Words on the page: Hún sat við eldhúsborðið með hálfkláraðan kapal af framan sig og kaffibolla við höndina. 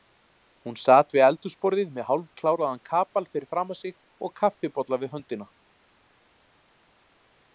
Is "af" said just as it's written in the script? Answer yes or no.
no